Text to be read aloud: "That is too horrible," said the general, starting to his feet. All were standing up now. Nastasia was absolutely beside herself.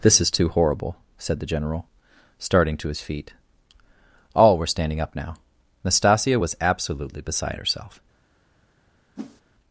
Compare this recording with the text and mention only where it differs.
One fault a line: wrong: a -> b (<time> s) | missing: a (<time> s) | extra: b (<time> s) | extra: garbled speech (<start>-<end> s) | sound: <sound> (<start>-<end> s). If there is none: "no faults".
wrong: That -> This (0.0 s)
sound: whoosh (9.2-9.4 s)